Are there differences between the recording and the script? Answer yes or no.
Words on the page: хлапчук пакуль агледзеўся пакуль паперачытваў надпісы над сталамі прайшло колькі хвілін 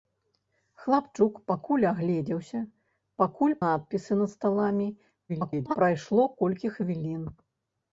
yes